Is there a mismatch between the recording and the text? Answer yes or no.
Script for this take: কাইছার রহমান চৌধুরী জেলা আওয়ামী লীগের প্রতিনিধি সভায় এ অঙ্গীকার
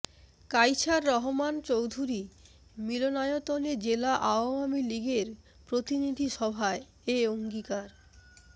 yes